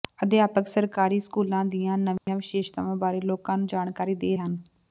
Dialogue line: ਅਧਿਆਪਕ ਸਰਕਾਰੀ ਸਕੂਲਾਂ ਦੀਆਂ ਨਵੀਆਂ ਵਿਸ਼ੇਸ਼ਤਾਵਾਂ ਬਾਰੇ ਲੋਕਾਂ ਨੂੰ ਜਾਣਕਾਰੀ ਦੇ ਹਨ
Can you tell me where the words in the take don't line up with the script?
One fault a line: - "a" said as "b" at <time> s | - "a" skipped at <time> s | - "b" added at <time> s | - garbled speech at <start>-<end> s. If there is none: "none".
none